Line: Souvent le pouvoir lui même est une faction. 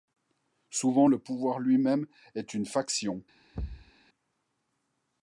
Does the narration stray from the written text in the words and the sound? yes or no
yes